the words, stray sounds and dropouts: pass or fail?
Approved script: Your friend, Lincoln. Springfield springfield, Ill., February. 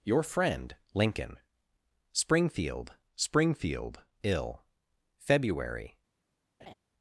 fail